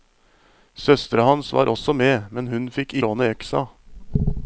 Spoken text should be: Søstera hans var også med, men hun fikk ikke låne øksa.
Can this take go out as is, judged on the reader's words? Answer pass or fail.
fail